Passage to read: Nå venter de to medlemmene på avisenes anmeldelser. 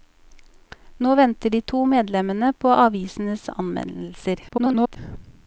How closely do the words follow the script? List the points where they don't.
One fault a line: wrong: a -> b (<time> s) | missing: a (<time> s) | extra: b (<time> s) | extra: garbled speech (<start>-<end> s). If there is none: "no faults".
extra: garbled speech (4.5-5.0 s)